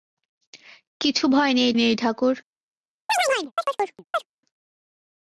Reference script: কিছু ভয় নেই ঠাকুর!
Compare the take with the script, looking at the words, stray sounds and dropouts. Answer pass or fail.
fail